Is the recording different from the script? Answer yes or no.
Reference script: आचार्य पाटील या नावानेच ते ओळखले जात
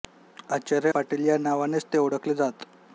no